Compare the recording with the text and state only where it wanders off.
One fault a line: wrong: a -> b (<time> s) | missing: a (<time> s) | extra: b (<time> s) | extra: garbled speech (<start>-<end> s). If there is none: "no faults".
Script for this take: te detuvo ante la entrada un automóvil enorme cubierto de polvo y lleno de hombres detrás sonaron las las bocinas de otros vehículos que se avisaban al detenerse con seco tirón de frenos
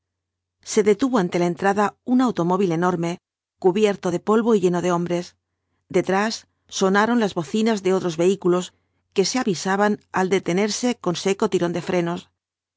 wrong: te -> se (0.7 s)
missing: las (7.3 s)